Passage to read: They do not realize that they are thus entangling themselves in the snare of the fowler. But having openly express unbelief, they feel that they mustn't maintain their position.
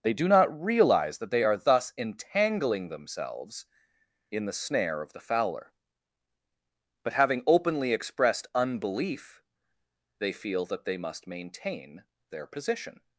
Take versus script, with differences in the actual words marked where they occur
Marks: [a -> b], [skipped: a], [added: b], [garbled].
They do not realize that they are thus entangling themselves in the snare of the fowler. But having openly [express -> expressed] unbelief, they feel that they [mustn't -> must] maintain their position.